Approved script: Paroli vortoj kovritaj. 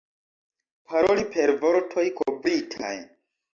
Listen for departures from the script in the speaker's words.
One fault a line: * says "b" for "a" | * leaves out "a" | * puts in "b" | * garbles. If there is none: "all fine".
* puts in "per"